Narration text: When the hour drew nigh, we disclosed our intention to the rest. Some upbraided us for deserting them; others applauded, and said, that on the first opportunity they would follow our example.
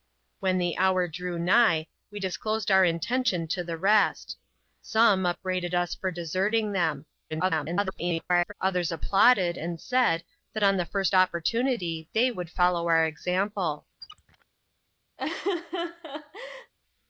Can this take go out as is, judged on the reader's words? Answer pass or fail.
fail